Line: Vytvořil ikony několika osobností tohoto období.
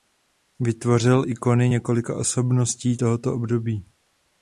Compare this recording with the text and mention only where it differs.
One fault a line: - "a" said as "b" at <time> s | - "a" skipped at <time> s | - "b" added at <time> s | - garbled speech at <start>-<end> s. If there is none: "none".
none